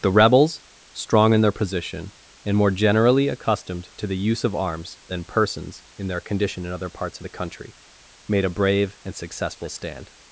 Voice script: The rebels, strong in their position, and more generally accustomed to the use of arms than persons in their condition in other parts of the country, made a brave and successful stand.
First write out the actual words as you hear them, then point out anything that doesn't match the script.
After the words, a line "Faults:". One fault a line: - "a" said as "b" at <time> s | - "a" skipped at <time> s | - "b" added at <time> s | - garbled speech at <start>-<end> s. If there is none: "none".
The rebels, strong in their position, and more generally accustomed to the use of arms than persons in their condition in other parts of the country, made a brave and successful stand.
Faults:
none